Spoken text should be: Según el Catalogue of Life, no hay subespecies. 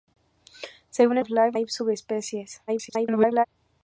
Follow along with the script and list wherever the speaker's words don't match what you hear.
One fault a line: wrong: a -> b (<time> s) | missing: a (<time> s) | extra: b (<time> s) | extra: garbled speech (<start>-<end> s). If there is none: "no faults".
missing: el Catalogue (1.2 s)
missing: no (1.6 s)
extra: garbled speech (2.7-3.5 s)